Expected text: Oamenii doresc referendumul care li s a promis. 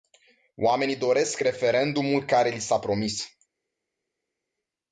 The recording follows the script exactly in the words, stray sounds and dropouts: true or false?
true